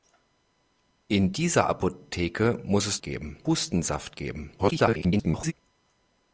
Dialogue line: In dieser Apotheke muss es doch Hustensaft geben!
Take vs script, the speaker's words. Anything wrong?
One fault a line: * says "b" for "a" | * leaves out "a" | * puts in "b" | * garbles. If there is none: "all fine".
* says "geben" for "doch"
* garbles